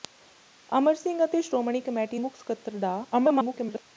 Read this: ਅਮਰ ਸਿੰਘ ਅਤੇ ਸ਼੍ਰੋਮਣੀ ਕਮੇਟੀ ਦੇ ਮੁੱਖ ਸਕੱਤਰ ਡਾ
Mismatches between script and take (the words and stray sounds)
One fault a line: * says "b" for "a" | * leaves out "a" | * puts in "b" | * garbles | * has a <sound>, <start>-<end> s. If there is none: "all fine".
* leaves out "ਦੇ"
* garbles